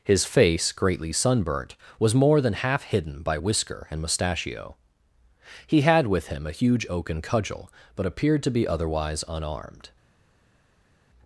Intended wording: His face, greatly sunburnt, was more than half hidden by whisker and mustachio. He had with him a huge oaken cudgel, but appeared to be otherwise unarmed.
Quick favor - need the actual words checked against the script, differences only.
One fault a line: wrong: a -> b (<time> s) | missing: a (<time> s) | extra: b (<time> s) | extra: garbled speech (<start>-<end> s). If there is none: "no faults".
no faults